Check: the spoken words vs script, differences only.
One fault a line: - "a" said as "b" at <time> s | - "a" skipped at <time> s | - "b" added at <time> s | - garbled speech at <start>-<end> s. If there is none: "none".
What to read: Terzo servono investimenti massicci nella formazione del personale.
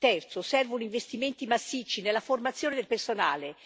none